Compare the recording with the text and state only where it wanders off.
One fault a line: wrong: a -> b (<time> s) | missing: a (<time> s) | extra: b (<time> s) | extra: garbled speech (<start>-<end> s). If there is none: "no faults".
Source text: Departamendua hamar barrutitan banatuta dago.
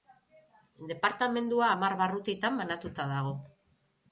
no faults